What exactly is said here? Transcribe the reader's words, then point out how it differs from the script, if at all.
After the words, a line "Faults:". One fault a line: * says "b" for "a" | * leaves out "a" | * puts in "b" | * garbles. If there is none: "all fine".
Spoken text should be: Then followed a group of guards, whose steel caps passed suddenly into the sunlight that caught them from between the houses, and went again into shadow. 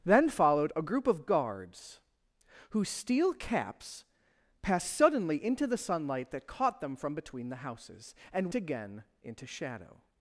Then followed a group of guards, whose steel caps passed suddenly into the sunlight that caught them from between the houses, and again into shadow.
Faults:
* leaves out "went"